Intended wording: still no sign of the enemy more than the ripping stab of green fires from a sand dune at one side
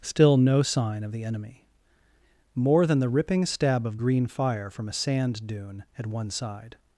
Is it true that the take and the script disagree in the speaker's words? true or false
true